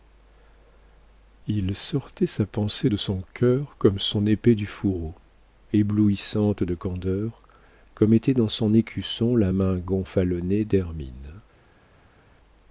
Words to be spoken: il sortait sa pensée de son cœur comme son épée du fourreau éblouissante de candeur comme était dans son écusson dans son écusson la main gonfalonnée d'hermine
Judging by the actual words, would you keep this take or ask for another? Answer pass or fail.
fail